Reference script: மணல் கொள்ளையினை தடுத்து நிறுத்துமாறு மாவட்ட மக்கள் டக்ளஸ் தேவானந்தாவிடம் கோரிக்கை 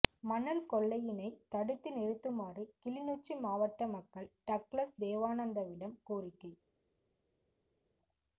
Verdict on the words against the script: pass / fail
fail